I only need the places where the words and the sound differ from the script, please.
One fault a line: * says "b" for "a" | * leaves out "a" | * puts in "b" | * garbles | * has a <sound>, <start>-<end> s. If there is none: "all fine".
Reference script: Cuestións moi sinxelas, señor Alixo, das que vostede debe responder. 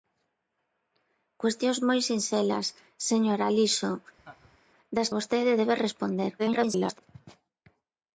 * has a laugh, 4.2-4.6 s
* leaves out "que"
* garbles